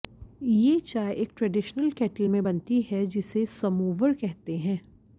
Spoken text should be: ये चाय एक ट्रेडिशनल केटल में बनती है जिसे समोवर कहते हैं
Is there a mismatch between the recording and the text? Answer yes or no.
no